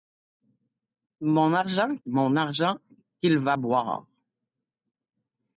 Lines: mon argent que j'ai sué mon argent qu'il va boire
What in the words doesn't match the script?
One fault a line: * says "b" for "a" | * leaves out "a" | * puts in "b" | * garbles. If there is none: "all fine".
* leaves out "que j'ai sué"